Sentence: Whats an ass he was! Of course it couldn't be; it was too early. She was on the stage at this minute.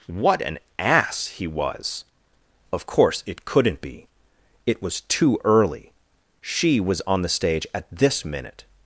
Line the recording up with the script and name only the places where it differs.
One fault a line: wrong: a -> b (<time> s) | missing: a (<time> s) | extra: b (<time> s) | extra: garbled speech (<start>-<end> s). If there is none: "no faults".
wrong: Whats -> What (0.1 s)